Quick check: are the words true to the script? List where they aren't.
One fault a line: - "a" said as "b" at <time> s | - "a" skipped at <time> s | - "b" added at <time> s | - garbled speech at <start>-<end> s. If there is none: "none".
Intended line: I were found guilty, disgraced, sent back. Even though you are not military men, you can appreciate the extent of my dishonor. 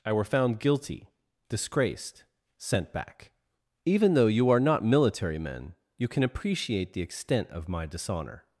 none